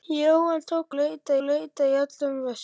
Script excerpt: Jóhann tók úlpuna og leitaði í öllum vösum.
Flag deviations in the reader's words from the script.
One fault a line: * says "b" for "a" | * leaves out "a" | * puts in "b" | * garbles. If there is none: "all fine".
* says "leitaði" for "úlpuna"